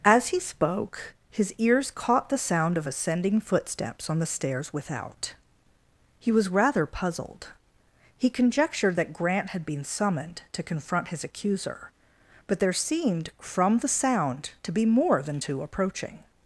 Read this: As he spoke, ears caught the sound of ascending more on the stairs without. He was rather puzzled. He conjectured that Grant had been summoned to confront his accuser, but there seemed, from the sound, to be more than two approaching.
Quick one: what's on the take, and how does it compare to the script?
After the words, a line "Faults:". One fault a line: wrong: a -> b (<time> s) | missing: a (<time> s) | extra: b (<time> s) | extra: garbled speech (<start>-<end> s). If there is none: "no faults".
As he spoke, his ears caught the sound of ascending footsteps on the stairs without. He was rather puzzled. He conjectured that Grant had been summoned to confront his accuser, but there seemed, from the sound, to be more than two approaching.
Faults:
extra: his (1.3 s)
wrong: more -> footsteps (3.4 s)